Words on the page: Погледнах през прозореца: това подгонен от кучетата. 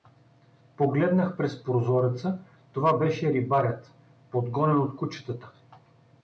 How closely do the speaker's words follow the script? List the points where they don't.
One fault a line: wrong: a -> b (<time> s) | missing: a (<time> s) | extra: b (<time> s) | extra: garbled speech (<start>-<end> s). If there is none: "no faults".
extra: беше рибарят (3.0 s)